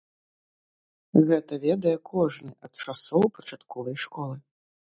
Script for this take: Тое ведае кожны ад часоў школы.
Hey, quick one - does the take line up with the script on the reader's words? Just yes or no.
no